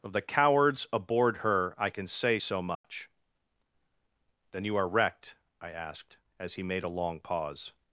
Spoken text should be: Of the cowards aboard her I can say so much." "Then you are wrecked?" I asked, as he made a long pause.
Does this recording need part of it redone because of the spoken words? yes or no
no